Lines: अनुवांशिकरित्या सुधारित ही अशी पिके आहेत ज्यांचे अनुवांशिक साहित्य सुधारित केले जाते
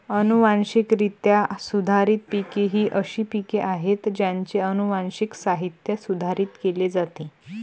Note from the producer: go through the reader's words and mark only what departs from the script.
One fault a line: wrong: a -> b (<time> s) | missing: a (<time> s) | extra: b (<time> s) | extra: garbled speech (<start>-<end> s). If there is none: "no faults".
extra: पिके (2.3 s)